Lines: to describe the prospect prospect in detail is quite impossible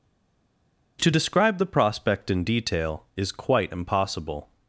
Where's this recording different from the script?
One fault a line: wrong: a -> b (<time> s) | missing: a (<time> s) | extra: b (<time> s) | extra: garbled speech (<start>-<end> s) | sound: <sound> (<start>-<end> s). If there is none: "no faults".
missing: prospect (2.3 s)